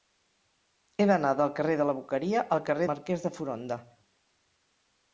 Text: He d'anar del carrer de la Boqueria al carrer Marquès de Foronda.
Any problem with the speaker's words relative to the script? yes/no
no